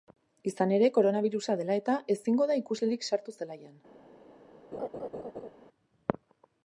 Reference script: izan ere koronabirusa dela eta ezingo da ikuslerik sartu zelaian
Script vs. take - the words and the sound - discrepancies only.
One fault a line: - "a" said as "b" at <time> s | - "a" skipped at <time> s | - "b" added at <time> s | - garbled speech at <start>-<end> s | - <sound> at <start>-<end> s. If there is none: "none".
- laugh at 4.7-5.5 s